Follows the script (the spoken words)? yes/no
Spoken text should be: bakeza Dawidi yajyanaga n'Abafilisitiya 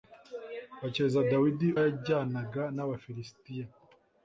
yes